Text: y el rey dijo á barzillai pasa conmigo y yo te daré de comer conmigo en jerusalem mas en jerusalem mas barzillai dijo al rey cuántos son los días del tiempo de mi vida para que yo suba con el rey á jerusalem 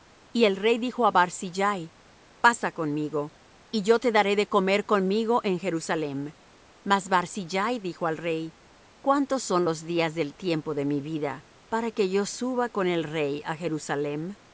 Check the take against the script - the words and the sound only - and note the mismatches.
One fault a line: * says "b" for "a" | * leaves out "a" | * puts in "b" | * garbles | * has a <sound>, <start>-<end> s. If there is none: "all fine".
* leaves out "en jerusalem mas"